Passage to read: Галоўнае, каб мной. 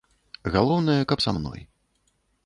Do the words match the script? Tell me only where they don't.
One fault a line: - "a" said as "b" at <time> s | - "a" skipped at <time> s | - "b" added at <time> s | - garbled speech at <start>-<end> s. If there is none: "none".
- "са" added at 1.2 s